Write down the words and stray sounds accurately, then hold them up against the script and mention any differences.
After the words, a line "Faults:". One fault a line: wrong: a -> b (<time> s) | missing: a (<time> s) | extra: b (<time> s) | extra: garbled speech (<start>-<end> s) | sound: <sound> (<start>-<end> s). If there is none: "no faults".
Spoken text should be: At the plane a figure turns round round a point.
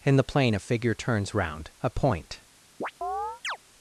In the plane a figure turns round a point.
Faults:
wrong: At -> In (0.0 s)
missing: round (1.7 s)
sound: chirp (2.8-3.6 s)